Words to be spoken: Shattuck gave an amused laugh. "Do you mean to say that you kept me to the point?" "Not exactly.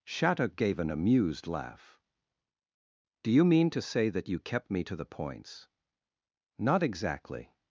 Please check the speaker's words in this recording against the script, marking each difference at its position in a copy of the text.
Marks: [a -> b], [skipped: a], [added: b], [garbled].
Shattuck gave an amused laugh. "Do you mean to say that you kept me to the [point?" -> points] "Not exactly.